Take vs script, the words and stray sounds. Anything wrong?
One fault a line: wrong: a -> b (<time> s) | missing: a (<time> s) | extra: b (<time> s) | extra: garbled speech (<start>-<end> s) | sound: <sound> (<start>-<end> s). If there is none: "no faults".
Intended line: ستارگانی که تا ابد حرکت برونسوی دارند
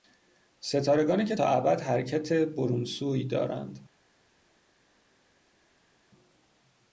no faults